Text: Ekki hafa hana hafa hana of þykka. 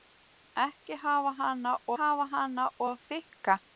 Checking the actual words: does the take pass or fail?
pass